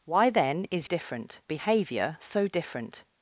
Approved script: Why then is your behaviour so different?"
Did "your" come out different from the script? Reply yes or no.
yes